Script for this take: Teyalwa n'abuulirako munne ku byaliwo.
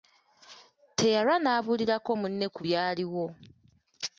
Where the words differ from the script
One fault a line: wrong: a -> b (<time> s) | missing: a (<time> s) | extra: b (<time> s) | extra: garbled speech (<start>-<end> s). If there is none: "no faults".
no faults